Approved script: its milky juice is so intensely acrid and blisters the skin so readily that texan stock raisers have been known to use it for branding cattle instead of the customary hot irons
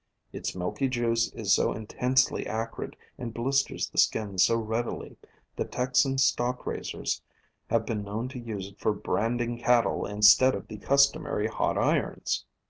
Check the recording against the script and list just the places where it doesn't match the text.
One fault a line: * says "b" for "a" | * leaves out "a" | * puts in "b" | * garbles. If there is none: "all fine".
all fine